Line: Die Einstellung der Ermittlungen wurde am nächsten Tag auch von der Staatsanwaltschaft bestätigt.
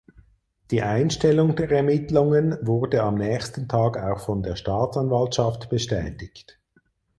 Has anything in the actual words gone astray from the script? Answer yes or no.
no